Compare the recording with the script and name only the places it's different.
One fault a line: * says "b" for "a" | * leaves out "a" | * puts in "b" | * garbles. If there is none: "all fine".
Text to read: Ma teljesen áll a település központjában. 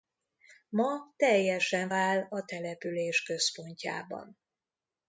all fine